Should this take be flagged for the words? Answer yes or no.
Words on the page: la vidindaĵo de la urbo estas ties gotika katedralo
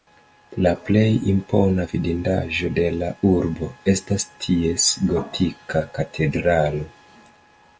yes